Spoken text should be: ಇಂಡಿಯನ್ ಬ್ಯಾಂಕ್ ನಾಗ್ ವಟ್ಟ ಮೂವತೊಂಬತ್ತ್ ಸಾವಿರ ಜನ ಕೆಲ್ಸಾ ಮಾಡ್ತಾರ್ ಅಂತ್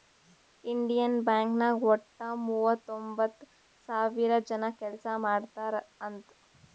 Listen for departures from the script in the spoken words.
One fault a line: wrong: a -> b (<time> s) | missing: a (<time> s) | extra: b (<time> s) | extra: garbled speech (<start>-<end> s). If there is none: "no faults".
no faults